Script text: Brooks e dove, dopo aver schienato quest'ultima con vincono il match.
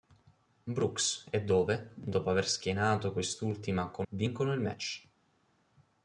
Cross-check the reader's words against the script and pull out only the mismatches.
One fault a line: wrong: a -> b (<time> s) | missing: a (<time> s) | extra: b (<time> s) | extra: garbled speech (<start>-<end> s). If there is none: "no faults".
no faults